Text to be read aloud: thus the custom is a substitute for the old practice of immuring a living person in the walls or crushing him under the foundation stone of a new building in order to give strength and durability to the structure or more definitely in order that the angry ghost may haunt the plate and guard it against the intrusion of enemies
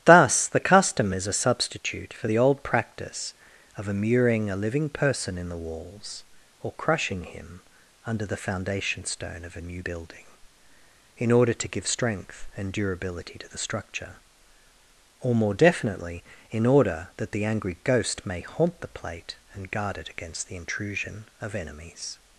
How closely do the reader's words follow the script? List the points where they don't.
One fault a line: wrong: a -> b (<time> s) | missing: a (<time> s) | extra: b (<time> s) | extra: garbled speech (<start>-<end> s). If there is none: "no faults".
no faults